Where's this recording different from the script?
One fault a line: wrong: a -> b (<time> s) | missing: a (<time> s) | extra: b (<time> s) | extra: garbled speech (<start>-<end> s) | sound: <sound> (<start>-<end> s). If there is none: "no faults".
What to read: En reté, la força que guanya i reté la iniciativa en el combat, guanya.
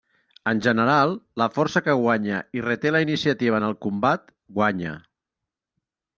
wrong: reté -> general (0.7 s)